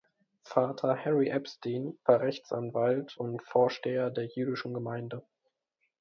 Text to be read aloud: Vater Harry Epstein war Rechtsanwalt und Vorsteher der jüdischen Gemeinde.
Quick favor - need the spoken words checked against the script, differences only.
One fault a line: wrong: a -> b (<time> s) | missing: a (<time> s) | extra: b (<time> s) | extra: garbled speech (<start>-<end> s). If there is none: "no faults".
no faults